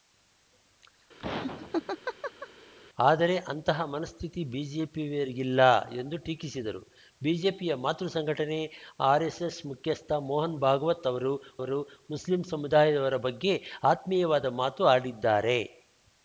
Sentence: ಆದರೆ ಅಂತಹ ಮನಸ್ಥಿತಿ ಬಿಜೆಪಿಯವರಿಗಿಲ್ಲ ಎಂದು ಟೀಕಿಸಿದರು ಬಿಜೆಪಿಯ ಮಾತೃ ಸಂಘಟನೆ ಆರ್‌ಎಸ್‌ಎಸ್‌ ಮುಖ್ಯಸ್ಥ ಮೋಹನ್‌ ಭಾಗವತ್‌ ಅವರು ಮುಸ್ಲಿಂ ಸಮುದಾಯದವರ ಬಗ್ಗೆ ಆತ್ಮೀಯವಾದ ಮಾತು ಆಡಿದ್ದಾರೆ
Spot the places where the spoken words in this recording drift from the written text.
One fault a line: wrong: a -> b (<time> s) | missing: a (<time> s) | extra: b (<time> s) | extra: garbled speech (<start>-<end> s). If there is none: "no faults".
extra: ಅವರು (11.6 s)